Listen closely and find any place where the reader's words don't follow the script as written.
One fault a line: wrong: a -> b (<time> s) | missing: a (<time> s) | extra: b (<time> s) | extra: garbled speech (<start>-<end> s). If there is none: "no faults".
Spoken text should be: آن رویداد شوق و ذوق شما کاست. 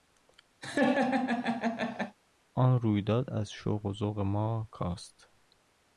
extra: از (3.3 s)
wrong: شما -> ما (4.2 s)